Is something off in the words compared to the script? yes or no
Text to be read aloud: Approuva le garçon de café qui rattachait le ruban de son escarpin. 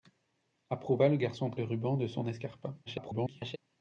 yes